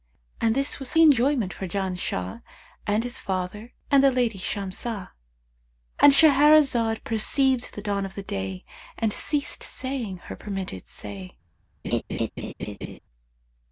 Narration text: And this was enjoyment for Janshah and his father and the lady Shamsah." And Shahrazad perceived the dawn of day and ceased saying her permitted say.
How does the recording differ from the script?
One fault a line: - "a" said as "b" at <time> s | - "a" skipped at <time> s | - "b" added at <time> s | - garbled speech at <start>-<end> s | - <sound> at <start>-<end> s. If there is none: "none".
- laugh at 11.8-13.0 s